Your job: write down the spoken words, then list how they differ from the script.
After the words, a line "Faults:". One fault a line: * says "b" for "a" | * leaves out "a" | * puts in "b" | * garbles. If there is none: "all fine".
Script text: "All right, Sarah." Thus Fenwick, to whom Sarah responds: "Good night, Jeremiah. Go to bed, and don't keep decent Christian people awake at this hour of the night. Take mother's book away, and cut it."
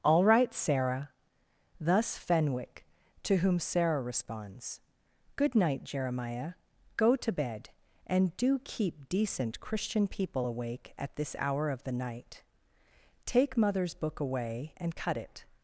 "All right, Sarah." Thus Fenwick, to whom Sarah responds: "Good night, Jeremiah. Go to bed, and do keep decent Christian people awake at this hour of the night. Take mother's book away, and cut it."
Faults:
* says "do" for "don't"